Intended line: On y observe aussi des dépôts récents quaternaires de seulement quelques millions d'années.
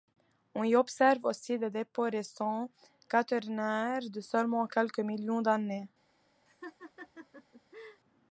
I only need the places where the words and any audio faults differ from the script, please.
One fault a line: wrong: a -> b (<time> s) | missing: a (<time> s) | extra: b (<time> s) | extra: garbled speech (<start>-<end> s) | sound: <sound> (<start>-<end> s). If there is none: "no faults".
sound: laugh (6.5-8.0 s)